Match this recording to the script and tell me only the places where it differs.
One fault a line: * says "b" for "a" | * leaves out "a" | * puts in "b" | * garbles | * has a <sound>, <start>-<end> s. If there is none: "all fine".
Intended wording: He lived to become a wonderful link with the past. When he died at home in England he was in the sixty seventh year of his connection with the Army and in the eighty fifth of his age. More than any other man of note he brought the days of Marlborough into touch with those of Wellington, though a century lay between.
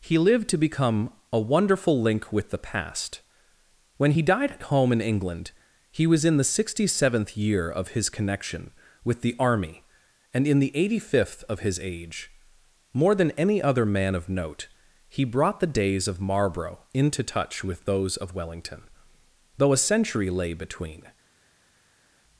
all fine